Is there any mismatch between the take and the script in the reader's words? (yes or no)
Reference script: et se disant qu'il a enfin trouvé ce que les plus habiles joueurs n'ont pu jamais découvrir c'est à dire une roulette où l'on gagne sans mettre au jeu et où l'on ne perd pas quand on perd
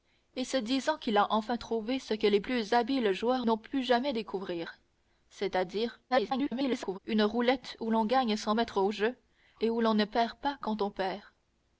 yes